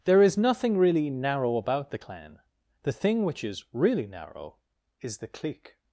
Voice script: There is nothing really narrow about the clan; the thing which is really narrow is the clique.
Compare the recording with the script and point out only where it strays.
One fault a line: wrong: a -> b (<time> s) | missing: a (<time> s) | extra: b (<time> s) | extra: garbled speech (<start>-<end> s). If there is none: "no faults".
no faults